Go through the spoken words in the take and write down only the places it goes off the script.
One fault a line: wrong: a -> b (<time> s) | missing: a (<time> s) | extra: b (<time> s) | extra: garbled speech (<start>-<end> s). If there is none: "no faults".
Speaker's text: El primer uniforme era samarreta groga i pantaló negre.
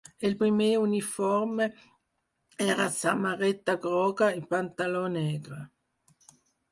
no faults